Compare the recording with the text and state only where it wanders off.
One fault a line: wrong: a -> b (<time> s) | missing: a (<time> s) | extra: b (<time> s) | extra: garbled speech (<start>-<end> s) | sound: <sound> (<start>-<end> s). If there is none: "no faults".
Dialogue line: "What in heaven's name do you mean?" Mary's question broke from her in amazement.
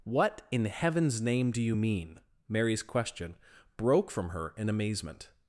no faults